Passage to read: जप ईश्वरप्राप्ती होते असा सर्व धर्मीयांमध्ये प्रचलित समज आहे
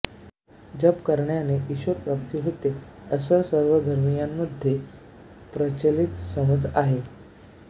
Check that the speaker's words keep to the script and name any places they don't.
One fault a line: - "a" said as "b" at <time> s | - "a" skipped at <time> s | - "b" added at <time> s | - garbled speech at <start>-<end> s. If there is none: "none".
- "करण्याने" added at 1.1 s